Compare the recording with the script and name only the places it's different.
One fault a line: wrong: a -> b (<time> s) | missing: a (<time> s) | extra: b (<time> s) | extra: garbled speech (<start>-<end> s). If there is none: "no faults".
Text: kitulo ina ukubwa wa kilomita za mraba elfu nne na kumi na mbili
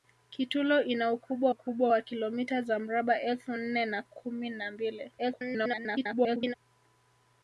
extra: ukubwa (1.5 s)
extra: garbled speech (5.2-6.5 s)